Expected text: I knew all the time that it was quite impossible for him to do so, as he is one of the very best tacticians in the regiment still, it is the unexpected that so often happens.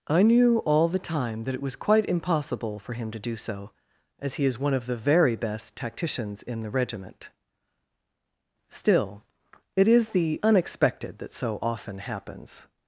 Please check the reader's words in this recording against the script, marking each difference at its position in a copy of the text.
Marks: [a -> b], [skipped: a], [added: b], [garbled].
I knew all the time that it was quite impossible for him to do so, as he is one of the very best tacticians in the regiment still, it is the unexpected that so often happens.